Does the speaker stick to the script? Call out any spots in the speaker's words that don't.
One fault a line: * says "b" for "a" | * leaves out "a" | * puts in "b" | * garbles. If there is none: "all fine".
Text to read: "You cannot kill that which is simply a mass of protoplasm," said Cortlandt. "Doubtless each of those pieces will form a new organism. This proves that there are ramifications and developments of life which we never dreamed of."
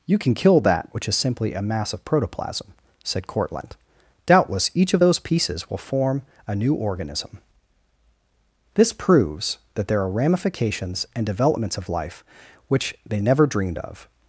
* says "can" for "cannot"
* says "they" for "we"